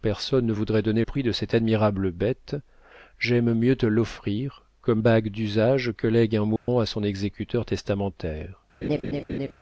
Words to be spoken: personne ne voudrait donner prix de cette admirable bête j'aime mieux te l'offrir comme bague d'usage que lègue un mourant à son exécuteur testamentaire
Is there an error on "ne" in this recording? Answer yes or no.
no